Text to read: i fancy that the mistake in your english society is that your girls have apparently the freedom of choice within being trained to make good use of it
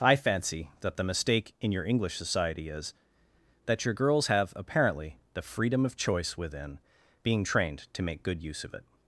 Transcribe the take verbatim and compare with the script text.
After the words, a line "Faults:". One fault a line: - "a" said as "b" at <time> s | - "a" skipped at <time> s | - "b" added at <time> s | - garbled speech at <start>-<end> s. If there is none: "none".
i fancy that the mistake in your english society is that your girls have apparently the freedom of choice within being trained to make good use of it
Faults:
none